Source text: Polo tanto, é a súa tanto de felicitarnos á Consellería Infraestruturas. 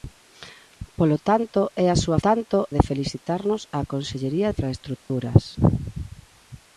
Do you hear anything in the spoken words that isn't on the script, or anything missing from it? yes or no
no